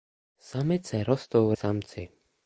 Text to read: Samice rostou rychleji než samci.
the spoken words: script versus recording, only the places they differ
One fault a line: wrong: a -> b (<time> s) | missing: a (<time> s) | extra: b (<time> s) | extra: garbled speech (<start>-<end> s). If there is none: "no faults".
missing: rychleji než (1.5 s)